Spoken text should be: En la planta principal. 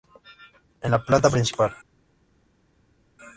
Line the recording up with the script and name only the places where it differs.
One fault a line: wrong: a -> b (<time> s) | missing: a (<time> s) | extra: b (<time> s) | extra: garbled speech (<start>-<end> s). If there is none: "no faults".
no faults